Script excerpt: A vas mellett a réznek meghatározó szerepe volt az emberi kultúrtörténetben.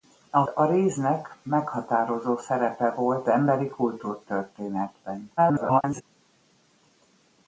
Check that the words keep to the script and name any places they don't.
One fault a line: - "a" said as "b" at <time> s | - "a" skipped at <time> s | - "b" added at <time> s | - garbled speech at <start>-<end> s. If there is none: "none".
- "vas mellett" skipped at 0.5 s
- "az" skipped at 3.3 s
- garbled speech at 5.4-6.0 s